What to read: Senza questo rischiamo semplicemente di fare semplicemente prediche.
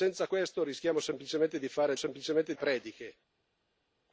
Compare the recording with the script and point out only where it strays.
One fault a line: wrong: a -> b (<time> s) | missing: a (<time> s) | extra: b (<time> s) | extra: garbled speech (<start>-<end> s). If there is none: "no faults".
no faults